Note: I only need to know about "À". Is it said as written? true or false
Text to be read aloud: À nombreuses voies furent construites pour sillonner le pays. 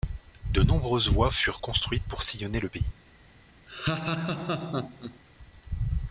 false